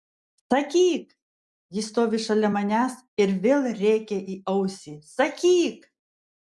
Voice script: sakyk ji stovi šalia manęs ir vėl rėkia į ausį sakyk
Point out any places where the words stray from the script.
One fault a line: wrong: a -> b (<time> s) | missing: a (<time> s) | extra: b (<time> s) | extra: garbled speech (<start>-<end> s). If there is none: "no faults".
no faults